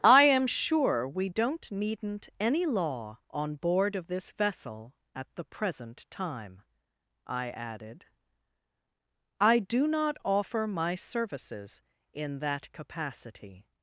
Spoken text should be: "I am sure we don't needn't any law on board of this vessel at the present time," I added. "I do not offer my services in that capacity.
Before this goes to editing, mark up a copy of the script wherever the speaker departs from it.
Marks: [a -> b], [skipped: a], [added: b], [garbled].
"I am sure we don't needn't any law on board of this vessel at the present time," I added. "I do not offer my services in that capacity.